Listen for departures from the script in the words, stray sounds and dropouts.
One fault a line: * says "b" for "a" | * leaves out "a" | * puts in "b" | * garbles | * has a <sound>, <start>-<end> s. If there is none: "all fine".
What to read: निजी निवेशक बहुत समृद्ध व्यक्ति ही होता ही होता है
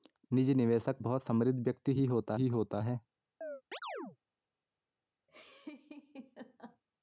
* has a chirp, 3.4-4.2 s
* has a laugh, 5.3-6.8 s